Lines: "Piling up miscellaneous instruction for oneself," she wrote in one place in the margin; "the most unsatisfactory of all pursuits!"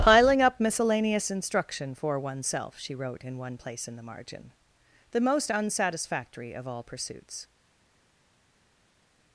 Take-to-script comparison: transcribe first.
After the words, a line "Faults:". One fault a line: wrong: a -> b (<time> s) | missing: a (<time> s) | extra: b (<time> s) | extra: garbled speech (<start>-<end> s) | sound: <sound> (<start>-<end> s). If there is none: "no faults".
"Piling up miscellaneous instruction for oneself," she wrote in one place in the margin; "the most unsatisfactory of all pursuits!"
Faults:
no faults